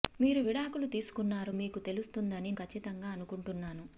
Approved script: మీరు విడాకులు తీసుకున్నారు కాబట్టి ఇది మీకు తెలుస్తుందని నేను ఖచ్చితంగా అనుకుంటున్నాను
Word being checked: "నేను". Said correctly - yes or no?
no